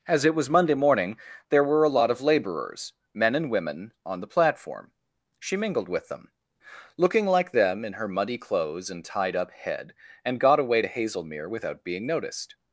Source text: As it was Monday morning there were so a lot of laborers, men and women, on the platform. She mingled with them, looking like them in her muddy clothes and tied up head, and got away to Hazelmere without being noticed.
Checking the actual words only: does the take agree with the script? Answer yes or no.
no